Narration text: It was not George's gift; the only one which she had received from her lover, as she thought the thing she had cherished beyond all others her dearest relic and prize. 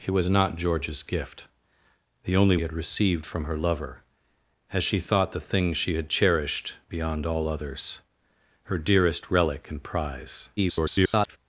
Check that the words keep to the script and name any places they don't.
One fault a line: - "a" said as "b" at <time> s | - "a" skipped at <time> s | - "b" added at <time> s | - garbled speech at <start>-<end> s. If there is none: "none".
- "one which she" skipped at 2.6 s
- garbled speech at 10.6-11.4 s